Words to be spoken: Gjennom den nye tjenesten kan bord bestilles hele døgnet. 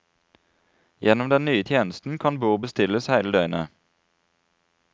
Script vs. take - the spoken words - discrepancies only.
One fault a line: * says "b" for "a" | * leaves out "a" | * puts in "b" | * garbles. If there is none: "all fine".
all fine